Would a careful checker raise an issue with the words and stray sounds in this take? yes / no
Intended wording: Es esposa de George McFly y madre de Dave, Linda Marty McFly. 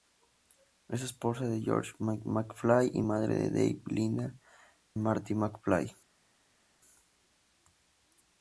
no